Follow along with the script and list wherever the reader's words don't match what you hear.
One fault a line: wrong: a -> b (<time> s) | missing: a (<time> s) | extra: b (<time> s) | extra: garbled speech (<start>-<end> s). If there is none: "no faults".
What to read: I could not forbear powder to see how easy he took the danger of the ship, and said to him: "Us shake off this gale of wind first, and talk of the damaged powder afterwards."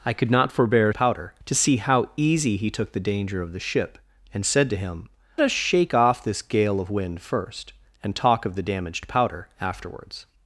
no faults